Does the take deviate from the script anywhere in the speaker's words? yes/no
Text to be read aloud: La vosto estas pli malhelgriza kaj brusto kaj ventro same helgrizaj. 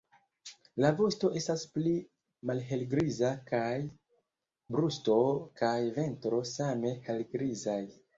no